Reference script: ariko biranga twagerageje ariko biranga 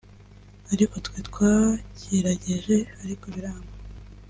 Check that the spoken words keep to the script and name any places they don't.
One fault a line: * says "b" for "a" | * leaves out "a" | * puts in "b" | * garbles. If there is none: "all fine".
* says "twe" for "biranga"